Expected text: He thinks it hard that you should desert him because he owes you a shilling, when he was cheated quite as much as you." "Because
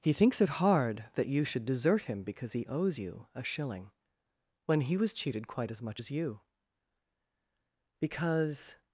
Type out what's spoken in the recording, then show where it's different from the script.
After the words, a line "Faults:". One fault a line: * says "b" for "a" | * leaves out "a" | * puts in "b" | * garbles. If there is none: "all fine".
He thinks it hard that you should desert him because he owes you a shilling, when he was cheated quite as much as you." "Because
Faults:
all fine